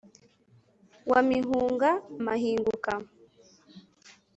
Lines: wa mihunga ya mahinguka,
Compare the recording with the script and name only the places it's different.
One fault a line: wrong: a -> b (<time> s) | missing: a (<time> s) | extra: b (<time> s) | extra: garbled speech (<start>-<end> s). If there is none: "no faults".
missing: ya (1.9 s)